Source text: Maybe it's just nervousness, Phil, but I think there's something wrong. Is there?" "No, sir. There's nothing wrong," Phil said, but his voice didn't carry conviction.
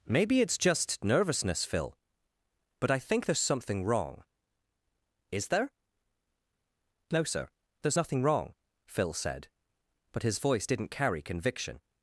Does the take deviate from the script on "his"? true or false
false